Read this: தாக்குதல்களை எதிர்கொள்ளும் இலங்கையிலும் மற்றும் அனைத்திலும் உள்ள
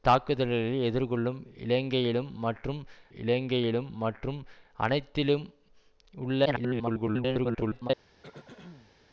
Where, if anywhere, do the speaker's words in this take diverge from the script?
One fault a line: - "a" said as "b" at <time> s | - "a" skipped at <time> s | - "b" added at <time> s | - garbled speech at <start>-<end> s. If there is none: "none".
- "இலங்கையிலும் மற்றும்" added at 3.1 s
- garbled speech at 6.5-7.9 s